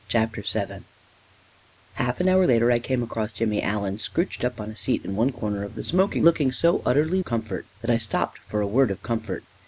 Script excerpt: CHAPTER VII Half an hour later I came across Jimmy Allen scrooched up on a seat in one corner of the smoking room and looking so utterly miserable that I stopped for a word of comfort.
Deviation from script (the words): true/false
true